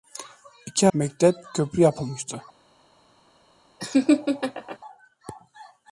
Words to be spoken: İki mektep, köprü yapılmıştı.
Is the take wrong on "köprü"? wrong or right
right